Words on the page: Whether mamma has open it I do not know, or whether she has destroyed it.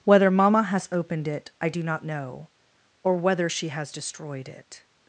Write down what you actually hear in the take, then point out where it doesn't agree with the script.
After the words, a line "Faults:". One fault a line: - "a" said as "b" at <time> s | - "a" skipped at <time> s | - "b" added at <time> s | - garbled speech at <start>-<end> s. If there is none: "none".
Whether mamma has opened it I do not know, or whether she has destroyed it.
Faults:
- "open" said as "opened" at 0.9 s